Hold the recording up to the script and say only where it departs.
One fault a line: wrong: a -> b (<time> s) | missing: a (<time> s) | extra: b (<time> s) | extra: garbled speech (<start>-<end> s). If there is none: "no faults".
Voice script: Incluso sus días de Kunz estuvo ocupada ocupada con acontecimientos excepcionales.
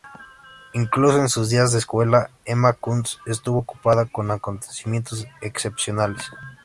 extra: en (1.2 s)
extra: escuela Emma (1.8 s)
missing: ocupada (4.1 s)